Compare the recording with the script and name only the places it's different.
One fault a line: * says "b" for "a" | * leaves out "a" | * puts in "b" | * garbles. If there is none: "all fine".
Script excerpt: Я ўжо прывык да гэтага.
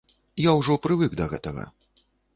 all fine